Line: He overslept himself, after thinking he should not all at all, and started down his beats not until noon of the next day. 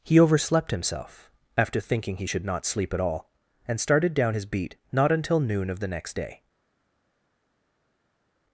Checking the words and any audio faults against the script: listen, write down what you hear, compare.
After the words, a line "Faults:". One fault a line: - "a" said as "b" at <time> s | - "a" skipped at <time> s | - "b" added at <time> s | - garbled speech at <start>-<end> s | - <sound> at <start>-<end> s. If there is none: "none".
He overslept himself, after thinking he should not sleep at all, and started down his beat not until noon of the next day.
Faults:
- "all" said as "sleep" at 2.6 s
- "beats" said as "beat" at 4.4 s